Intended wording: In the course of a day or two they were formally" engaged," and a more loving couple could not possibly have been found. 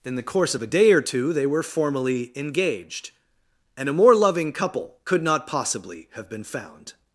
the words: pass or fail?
pass